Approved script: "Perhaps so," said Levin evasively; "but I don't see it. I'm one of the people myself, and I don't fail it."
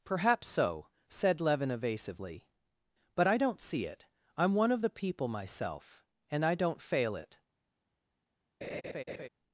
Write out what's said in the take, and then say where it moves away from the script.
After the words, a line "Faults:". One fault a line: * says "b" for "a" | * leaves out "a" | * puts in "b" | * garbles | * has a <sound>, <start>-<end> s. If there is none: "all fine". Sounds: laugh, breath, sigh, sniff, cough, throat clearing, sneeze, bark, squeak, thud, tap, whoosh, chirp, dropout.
"Perhaps so," said Levin evasively; "but I don't see it. I'm one of the people myself, and I don't fail it."
Faults:
* has a laugh, 8.6-9.3 s